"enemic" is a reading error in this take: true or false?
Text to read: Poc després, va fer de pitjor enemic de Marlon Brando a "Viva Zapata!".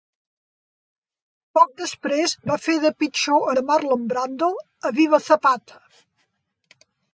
true